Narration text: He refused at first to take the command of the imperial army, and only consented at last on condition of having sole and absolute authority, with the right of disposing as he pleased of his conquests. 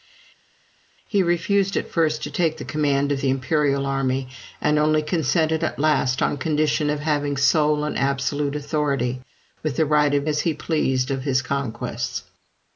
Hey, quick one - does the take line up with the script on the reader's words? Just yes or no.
no